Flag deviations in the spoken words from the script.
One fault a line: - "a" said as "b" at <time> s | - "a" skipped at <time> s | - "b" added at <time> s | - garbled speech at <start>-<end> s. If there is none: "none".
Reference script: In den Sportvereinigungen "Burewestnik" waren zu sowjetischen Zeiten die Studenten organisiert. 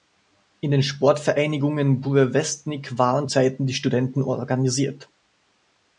- "zu sowjetischen" skipped at 3.3 s